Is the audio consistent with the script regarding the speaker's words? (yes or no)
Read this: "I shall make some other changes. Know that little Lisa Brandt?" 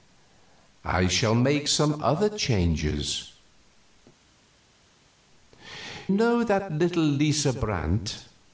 yes